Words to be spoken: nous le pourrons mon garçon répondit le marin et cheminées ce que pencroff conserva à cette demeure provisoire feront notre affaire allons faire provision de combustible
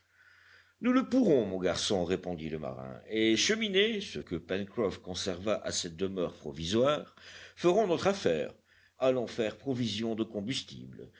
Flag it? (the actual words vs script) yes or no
no